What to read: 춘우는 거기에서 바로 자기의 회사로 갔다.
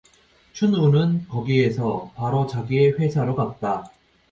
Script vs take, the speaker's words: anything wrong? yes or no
no